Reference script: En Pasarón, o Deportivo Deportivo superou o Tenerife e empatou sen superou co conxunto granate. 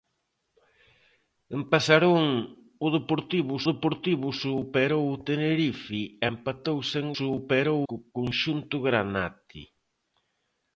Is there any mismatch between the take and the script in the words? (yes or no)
no